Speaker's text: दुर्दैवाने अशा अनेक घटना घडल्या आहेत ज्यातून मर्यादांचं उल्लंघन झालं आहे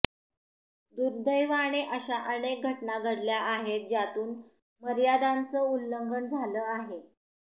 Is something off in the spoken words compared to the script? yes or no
no